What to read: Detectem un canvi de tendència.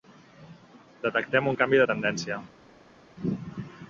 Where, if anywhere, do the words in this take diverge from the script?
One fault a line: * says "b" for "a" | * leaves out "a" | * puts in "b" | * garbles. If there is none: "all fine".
all fine